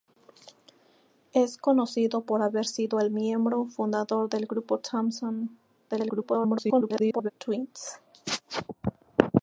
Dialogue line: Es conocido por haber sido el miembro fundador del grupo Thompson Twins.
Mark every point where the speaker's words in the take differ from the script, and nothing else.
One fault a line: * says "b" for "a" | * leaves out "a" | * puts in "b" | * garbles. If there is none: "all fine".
* garbles